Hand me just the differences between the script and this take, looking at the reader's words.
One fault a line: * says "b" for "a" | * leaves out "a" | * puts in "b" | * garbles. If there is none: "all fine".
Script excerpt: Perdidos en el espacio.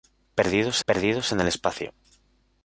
* puts in "perdidos"